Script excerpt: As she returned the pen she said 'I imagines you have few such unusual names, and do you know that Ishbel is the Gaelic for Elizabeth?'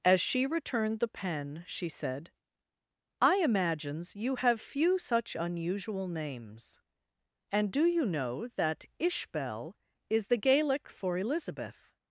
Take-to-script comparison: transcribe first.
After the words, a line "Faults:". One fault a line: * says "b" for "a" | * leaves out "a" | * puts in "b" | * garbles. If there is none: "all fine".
As she returned the pen she said 'I imagines you have few such unusual names, and do you know that Ishbel is the Gaelic for Elizabeth?'
Faults:
all fine